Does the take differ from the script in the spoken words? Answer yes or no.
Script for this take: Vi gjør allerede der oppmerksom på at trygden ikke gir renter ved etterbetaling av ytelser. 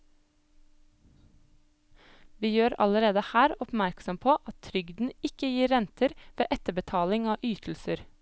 yes